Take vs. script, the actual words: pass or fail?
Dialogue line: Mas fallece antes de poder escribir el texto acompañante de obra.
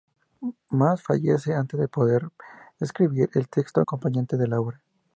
fail